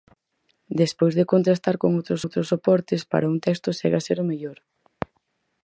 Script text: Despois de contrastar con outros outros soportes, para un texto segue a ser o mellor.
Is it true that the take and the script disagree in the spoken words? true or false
false